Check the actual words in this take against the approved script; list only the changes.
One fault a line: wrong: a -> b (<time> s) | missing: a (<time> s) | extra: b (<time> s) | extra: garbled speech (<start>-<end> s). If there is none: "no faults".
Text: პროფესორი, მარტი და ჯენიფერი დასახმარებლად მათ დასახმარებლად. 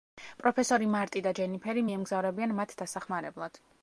wrong: დასახმარებლად -> მიემგზავრებიან (1.8 s)